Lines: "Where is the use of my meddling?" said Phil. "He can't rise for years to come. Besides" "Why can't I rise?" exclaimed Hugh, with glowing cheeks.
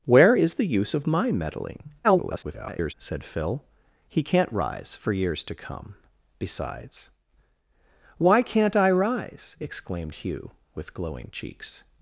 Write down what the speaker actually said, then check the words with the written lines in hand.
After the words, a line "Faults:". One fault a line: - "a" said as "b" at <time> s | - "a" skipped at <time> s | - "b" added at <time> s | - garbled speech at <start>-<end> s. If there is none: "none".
"Where is the use of my meddling?" [garbled] said Phil. "He can't rise for years to come. Besides" "Why can't I rise?" exclaimed Hugh, with glowing cheeks.
Faults:
- garbled speech at 2.0-2.9 s